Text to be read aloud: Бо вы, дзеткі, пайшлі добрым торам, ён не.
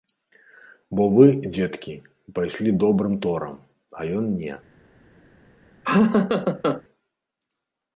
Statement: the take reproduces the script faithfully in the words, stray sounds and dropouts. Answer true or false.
false